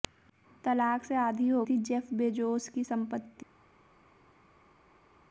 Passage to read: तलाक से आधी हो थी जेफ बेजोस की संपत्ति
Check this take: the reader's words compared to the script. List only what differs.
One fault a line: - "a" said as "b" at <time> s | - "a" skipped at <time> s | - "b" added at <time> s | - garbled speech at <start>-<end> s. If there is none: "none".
none